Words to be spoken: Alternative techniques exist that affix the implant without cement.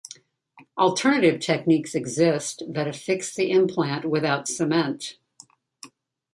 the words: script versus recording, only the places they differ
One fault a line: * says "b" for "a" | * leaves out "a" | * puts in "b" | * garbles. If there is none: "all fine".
all fine